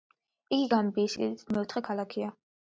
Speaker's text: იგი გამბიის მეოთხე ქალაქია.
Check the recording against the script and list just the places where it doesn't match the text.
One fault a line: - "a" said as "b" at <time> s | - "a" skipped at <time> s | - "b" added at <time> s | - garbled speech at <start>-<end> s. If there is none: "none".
- "სიდიდით" added at 1.2 s